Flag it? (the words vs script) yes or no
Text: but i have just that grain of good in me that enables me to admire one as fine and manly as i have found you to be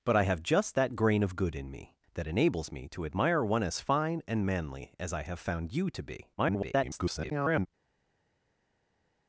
yes